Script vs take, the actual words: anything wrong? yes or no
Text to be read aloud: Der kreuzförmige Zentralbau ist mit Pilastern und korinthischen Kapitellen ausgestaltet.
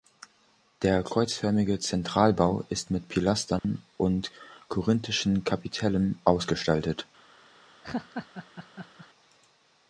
no